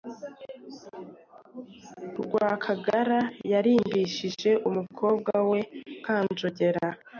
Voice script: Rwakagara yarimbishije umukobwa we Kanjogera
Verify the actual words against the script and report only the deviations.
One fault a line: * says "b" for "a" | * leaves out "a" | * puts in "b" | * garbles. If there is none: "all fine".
all fine